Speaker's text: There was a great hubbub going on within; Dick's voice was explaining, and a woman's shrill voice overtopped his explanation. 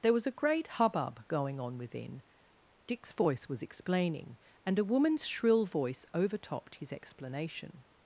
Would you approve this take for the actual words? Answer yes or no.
yes